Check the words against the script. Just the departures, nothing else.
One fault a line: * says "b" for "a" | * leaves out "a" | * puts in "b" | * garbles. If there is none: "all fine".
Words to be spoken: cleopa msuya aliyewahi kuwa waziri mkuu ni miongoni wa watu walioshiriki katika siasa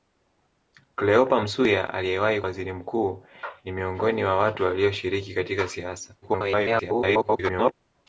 * leaves out "kuwa"
* garbles